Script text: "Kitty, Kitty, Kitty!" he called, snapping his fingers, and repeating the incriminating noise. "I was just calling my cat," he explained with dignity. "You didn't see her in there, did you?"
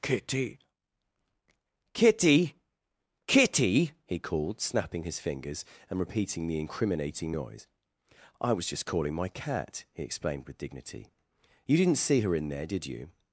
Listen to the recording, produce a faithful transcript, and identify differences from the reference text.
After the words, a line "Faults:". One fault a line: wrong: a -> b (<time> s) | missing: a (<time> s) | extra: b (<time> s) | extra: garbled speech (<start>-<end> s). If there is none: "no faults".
"Kitty, Kitty, Kitty!" he called, snapping his fingers, and repeating the incriminating noise. "I was just calling my cat," he explained with dignity. "You didn't see her in there, did you?"
Faults:
no faults